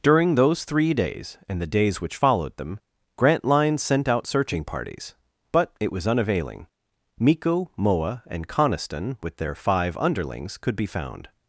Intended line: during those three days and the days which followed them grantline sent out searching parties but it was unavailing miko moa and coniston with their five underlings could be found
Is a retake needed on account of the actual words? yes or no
no